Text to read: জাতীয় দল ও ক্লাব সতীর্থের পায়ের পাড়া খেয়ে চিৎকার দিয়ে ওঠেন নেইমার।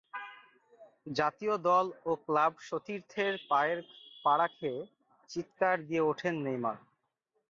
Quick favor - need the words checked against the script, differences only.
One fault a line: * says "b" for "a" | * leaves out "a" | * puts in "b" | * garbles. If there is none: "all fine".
all fine